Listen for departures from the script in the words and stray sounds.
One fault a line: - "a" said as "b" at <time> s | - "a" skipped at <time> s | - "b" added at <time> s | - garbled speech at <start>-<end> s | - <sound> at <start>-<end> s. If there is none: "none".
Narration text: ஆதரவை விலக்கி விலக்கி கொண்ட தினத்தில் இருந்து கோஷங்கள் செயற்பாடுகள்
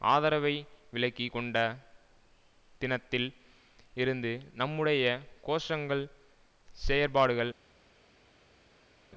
- "விலக்கி" skipped at 1.3 s
- "நம்முடைய" added at 4.5 s